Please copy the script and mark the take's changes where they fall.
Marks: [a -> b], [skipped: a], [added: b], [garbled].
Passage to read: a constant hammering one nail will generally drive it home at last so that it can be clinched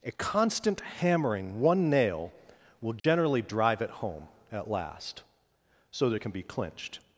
a constant hammering one nail will generally drive it home at last so that it can be clinched